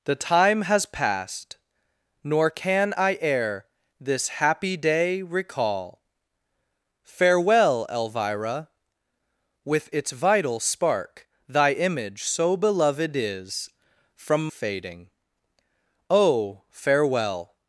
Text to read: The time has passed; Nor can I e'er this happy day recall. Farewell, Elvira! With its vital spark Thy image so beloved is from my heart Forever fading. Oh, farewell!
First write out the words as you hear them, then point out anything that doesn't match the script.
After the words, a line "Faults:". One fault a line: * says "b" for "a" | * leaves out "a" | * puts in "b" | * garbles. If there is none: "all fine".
The time has passed; Nor can I e'er this happy day recall. Farewell, Elvira! With its vital spark Thy image so beloved is from fading. Oh, farewell!
Faults:
* leaves out "my heart Forever"